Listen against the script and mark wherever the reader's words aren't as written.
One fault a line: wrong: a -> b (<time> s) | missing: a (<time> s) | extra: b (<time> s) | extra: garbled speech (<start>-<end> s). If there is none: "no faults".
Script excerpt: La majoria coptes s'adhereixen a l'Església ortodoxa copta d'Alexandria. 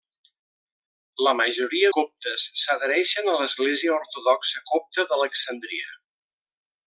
no faults